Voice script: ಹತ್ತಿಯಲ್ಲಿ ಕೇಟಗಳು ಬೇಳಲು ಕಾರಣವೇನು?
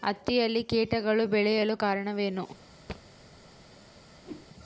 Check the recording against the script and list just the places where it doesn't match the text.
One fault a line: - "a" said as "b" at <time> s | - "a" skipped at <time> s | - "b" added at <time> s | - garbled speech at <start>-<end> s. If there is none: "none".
none